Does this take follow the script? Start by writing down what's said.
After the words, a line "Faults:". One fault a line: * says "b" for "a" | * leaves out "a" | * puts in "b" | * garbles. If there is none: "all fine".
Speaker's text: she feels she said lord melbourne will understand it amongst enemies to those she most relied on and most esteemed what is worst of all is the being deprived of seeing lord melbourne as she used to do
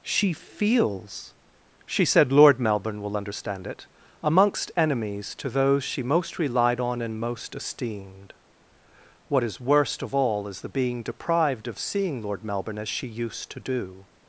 she feels she said lord melbourne will understand it amongst enemies to those she most relied on and most esteemed what is worst of all is the being deprived of seeing lord melbourne as she used to do
Faults:
all fine